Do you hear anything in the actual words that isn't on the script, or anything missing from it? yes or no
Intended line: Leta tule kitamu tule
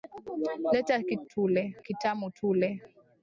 no